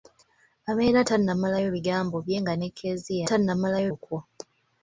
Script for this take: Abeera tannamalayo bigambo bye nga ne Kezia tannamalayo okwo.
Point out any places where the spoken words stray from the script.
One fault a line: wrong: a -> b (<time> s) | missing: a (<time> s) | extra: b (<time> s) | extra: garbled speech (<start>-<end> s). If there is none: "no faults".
no faults